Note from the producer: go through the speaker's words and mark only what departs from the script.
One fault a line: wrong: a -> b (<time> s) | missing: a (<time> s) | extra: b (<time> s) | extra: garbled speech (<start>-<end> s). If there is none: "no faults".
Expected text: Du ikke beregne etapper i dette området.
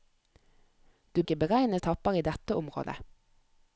no faults